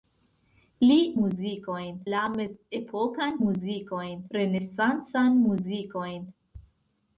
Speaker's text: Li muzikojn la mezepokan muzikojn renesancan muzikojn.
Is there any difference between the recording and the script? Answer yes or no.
no